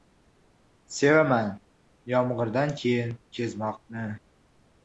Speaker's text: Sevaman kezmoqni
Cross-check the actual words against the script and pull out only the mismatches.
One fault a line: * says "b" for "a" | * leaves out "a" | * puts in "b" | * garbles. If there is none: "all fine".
* puts in "yomg'irdan keyin"